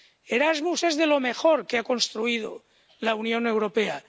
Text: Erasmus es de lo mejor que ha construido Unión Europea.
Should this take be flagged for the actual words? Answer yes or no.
yes